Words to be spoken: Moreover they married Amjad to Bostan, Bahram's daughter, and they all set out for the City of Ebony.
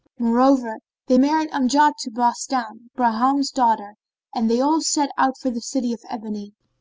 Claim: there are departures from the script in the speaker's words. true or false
false